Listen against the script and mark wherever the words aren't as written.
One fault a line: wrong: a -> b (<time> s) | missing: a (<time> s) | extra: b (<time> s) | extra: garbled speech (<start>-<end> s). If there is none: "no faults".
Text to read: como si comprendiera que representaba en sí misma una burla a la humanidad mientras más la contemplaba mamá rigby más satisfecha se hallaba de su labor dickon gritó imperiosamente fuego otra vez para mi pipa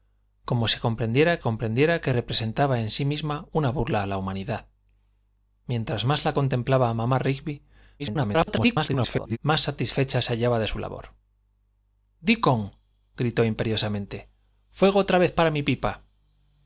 extra: comprendiera (1.4 s)
extra: garbled speech (8.0-9.4 s)